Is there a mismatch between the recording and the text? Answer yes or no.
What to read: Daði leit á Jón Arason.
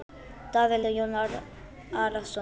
yes